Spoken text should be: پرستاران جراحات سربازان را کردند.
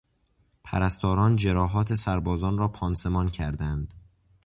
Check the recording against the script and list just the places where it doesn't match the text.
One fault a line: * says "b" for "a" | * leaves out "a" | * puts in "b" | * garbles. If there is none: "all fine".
* puts in "پانسمان"